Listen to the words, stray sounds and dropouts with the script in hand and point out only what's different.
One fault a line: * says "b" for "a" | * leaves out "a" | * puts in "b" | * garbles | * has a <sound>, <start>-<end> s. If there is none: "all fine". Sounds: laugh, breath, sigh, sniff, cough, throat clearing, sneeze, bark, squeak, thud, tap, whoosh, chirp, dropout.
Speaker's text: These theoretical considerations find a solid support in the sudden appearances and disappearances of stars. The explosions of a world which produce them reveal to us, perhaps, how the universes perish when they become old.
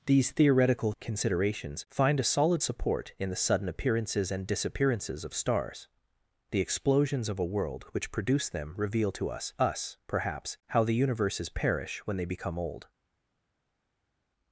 * puts in "us"